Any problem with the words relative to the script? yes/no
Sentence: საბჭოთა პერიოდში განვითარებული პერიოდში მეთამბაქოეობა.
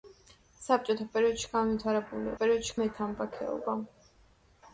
no